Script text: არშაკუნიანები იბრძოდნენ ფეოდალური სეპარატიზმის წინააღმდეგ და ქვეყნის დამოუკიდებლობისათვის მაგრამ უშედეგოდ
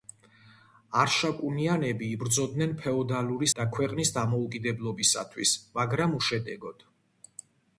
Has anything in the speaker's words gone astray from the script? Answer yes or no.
yes